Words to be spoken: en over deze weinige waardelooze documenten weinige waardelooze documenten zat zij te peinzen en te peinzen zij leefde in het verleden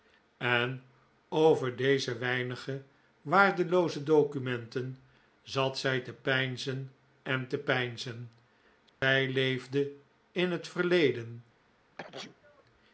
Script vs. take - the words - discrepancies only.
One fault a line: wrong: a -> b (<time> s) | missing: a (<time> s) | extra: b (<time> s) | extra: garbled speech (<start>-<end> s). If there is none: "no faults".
missing: weinige waardelooze documenten (5.0 s)